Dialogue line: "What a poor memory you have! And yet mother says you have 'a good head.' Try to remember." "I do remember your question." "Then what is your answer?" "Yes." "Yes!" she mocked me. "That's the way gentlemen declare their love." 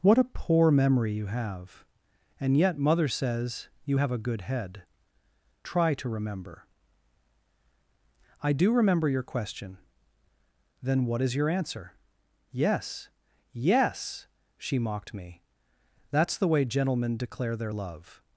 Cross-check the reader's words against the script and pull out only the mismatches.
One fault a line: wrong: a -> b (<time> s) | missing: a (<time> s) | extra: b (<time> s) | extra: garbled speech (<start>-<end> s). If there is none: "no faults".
no faults